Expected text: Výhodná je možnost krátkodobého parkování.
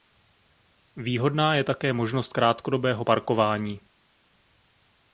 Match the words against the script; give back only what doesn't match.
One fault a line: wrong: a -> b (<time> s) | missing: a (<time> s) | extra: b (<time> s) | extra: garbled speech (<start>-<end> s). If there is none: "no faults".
extra: také (1.6 s)